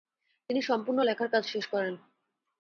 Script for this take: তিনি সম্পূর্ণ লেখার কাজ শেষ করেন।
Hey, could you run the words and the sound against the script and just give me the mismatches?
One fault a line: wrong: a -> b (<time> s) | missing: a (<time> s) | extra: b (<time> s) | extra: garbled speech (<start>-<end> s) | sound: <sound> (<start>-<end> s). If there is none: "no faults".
no faults